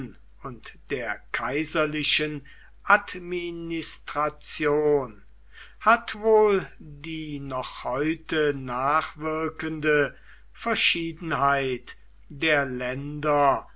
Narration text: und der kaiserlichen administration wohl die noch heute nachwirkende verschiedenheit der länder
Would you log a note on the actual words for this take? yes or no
yes